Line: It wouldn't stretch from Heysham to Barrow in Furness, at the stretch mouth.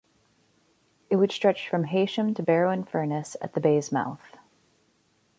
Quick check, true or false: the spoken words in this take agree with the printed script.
false